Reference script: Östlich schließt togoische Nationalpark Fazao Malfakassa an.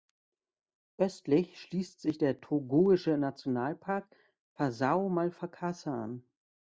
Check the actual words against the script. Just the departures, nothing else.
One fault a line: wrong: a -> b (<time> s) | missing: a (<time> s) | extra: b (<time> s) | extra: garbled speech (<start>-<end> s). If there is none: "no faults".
extra: sich der (2.0 s)